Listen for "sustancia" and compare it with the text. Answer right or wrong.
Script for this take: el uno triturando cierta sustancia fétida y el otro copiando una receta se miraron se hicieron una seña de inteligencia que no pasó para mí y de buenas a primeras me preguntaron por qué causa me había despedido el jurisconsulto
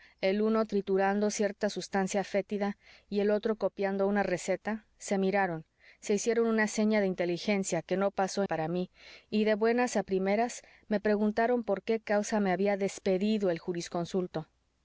right